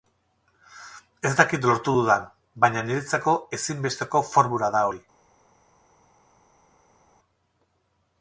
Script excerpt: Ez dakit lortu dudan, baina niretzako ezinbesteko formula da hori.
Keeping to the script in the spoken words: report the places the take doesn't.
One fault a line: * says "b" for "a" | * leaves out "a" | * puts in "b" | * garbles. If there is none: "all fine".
all fine